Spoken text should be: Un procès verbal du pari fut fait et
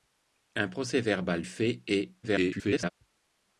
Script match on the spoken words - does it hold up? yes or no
no